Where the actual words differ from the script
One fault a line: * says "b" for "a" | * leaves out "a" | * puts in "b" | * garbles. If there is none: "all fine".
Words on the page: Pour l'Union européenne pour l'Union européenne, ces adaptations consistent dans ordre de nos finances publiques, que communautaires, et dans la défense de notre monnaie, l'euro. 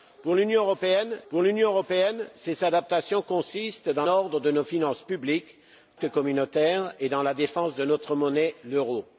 all fine